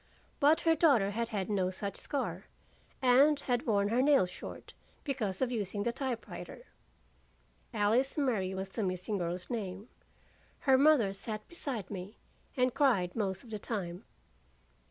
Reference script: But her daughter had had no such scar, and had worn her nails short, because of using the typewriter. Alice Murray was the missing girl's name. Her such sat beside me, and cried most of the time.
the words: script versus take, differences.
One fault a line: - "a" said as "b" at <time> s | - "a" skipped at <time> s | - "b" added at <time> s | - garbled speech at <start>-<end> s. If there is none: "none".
- "such" said as "mother" at 10.8 s